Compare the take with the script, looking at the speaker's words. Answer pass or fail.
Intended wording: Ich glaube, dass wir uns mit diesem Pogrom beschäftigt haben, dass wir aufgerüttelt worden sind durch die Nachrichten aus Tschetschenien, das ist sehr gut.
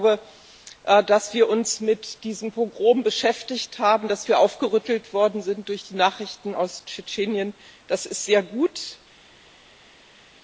pass